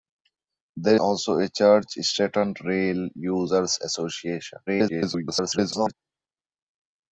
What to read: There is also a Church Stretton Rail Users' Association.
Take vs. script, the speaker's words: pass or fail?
fail